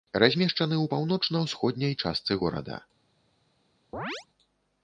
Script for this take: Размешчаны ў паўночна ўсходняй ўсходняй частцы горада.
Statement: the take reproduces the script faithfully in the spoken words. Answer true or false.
false